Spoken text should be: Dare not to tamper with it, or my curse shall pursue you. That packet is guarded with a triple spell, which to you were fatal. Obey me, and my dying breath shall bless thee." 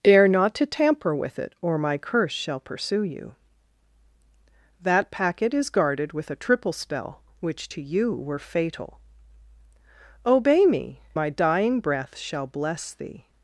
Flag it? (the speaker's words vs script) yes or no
yes